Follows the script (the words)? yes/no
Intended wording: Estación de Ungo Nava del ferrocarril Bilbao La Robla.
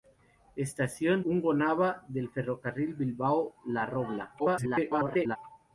no